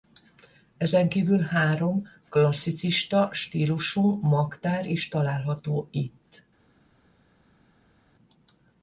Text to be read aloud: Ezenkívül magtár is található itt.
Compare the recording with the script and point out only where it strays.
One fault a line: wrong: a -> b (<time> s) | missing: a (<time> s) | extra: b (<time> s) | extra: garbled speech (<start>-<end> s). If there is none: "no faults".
extra: három klasszicista stílusú (1.4 s)